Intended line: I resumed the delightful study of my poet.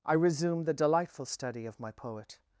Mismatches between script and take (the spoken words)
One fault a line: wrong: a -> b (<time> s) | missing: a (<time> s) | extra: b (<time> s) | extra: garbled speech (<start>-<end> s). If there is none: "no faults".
no faults